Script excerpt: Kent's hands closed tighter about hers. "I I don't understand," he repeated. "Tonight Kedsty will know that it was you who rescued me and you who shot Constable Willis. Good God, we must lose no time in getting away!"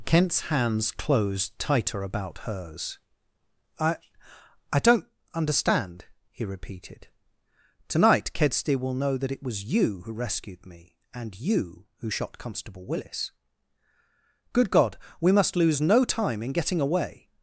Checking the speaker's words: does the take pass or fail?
pass